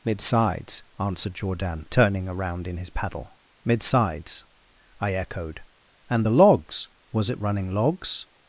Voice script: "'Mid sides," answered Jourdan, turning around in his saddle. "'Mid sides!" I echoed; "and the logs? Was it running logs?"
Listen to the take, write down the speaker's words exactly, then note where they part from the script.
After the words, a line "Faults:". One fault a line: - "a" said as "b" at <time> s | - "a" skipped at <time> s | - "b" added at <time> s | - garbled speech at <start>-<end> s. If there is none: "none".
"'Mid sides," answered Jourdan, turning around in his paddle. "'Mid sides!" I echoed; "and the logs? Was it running logs?"
Faults:
- "saddle" said as "paddle" at 2.9 s